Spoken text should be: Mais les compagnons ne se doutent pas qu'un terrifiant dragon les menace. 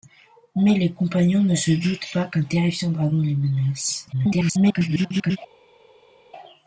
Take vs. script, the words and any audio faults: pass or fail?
fail